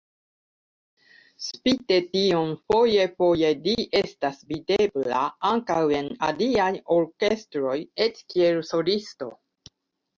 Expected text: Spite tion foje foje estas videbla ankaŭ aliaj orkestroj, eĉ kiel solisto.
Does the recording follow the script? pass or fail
fail